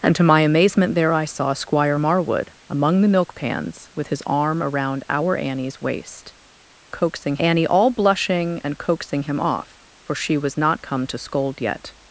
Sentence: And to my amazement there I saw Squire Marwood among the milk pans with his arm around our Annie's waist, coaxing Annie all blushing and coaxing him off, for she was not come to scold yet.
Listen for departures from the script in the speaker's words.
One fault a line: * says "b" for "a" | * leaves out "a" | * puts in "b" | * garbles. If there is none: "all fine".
all fine